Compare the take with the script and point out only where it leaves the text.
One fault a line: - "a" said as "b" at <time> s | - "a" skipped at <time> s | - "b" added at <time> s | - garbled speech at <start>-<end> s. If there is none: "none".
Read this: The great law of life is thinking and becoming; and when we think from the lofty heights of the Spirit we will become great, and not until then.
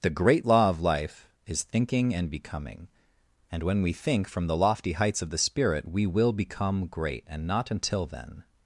none